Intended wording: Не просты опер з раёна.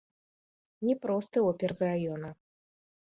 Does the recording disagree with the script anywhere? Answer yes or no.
no